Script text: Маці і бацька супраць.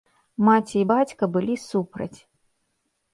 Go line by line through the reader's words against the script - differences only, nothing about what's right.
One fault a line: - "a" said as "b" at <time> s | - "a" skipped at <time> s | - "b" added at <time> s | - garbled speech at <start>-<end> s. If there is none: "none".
- "былі" added at 1.4 s